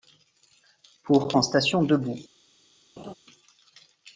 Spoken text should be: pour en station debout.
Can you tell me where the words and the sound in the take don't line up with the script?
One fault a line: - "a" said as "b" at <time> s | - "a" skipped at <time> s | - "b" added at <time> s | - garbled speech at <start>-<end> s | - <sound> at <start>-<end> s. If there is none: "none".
- laugh at 3.0-3.1 s